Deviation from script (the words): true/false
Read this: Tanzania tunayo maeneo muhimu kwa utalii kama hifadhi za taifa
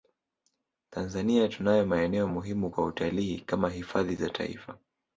false